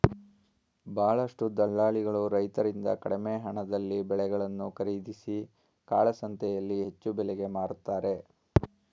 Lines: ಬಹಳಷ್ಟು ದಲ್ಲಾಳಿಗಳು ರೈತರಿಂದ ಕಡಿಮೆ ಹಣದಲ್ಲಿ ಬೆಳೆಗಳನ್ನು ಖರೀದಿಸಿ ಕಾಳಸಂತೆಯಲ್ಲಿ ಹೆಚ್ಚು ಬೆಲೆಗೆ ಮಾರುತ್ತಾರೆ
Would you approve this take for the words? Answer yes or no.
yes